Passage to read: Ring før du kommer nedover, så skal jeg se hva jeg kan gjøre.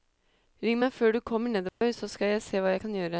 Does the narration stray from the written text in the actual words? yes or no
yes